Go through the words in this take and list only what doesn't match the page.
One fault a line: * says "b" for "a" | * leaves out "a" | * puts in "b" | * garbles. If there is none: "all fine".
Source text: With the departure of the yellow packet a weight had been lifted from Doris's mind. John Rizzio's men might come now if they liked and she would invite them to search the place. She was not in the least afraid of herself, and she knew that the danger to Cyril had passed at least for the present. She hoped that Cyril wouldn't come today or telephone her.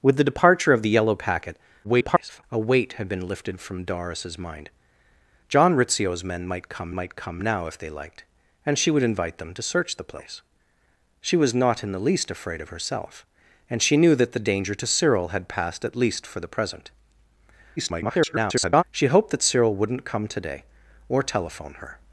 * garbles
* puts in "might come"
* garbles